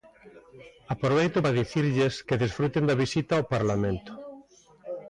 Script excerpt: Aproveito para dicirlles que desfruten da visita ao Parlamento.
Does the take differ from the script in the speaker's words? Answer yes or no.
no